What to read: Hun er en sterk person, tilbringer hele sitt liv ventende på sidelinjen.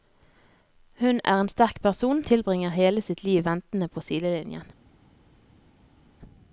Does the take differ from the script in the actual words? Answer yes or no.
no